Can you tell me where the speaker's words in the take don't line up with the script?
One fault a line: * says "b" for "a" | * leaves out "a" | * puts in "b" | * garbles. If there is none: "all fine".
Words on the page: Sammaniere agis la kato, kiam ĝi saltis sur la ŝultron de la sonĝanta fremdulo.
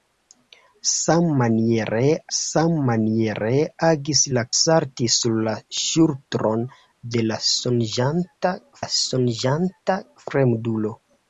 * puts in "sammaniere"
* leaves out "kato kiam ĝi"
* puts in "la sonĝanta"